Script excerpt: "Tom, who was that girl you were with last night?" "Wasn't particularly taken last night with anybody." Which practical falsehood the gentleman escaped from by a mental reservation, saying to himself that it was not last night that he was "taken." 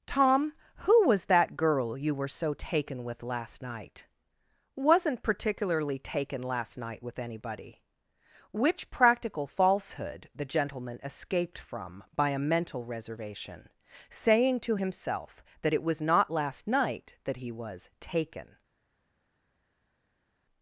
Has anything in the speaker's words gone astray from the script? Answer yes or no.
yes